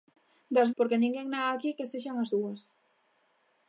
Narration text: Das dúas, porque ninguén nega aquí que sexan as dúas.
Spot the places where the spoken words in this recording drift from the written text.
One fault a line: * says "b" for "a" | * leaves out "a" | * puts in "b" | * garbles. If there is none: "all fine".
* leaves out "dúas"